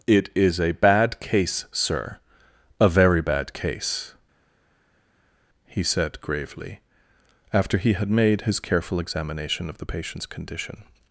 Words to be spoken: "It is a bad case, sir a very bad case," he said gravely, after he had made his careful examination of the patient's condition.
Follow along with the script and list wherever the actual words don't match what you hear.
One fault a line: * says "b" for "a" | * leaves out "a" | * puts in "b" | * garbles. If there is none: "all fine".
all fine